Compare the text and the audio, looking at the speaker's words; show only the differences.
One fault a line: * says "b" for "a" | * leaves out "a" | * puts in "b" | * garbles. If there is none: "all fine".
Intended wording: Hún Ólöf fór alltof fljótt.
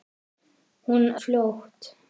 * leaves out "Ólöf fór alltof"